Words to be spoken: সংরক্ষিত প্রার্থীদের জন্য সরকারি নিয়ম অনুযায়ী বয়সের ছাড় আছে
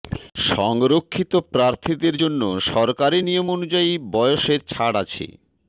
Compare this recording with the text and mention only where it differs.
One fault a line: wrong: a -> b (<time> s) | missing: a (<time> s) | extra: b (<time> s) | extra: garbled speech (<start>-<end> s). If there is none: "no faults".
no faults